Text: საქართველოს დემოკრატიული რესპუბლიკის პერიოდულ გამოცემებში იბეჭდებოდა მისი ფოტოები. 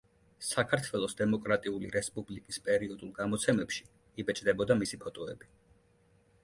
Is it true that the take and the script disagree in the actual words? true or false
false